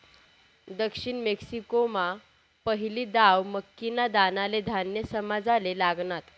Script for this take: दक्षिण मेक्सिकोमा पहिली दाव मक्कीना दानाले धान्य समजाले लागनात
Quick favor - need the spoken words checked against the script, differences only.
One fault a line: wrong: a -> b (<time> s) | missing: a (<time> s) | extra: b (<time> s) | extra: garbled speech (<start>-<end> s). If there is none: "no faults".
no faults